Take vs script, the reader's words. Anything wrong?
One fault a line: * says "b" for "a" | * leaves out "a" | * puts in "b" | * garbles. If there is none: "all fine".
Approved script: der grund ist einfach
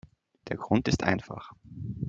all fine